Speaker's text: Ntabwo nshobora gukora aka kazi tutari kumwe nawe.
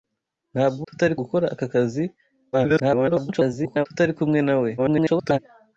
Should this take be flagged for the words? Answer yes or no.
yes